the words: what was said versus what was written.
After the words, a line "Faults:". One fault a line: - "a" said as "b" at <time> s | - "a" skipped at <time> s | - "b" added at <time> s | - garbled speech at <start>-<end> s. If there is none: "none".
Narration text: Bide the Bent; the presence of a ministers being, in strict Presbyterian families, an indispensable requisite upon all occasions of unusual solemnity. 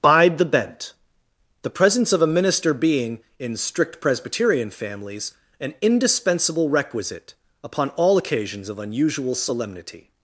Bide the Bent; the presence of a minister being, in strict Presbyterian families, an indispensable requisite upon all occasions of unusual solemnity.
Faults:
- "ministers" said as "minister" at 2.3 s